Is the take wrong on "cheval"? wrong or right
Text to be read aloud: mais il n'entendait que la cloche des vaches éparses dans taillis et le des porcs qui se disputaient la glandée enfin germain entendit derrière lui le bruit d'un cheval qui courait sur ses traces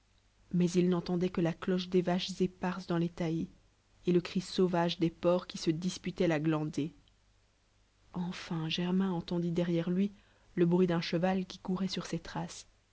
right